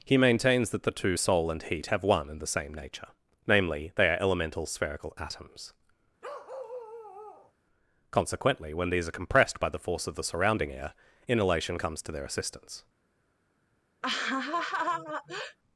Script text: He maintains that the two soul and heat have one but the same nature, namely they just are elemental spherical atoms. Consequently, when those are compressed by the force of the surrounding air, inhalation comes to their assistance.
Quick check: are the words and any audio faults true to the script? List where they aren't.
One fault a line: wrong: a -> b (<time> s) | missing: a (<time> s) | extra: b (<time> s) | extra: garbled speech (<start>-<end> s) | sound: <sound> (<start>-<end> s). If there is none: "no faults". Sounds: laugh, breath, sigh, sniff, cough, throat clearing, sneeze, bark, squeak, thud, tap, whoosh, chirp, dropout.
wrong: but -> and (2.3 s)
missing: just (4.1 s)
sound: bark (6.2-7.5 s)
wrong: those -> these (8.9 s)
sound: laugh (14.0-15.6 s)